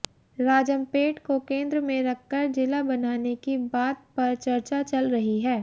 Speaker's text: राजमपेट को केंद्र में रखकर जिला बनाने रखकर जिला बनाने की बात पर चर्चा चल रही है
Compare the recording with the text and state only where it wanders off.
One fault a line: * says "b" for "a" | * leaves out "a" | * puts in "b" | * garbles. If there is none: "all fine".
* leaves out "रखकर जिला बनाने"